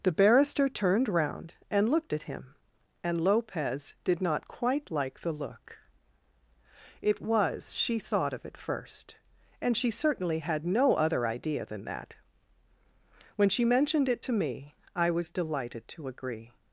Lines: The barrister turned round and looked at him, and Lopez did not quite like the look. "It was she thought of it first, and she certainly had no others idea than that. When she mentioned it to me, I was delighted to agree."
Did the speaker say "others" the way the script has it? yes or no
no